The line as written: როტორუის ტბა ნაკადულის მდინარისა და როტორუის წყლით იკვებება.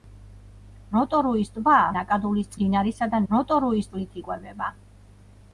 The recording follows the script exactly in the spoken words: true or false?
true